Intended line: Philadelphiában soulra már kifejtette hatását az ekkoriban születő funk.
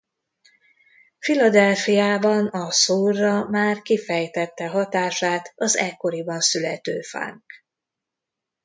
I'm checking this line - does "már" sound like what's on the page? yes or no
yes